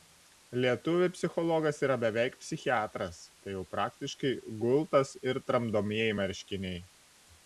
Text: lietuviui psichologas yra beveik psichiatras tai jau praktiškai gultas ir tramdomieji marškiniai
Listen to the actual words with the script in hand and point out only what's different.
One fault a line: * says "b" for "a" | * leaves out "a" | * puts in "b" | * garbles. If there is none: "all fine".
all fine